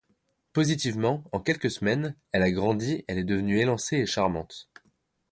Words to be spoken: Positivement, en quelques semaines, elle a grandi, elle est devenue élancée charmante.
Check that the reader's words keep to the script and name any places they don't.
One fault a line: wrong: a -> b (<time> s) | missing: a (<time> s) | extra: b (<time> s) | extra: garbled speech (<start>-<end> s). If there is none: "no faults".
extra: et (4.0 s)